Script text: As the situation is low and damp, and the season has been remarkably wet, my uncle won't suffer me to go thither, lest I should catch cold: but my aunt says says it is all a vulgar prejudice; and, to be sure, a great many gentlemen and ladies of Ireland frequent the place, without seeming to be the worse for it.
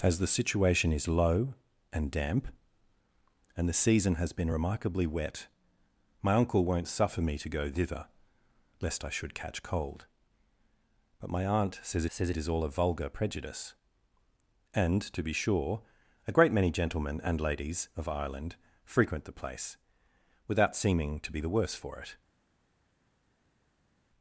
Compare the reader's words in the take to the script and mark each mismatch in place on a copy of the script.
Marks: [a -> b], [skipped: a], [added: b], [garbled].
As the situation is low and damp, and the season has been remarkably wet, my uncle won't suffer me to go thither, lest I should catch cold: but my aunt says says it is all a vulgar prejudice; and, to be sure, a great many gentlemen and ladies of Ireland frequent the place, without seeming to be the worse for it.